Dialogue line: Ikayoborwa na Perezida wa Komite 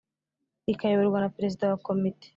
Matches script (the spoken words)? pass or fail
pass